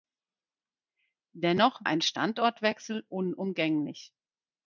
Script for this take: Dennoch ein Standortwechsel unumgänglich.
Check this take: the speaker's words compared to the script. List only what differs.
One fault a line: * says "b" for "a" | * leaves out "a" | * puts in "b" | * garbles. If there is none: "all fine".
all fine